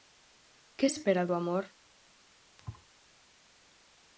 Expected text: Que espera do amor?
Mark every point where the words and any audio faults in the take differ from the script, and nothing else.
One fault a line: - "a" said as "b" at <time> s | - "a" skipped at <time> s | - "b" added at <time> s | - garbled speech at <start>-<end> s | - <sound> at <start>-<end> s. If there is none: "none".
- thud at 2.6-2.9 s